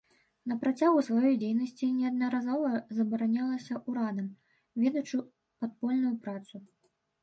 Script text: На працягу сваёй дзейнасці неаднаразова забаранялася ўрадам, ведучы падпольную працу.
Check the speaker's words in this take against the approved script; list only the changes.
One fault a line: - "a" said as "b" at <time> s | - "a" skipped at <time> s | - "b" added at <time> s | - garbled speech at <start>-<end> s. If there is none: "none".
none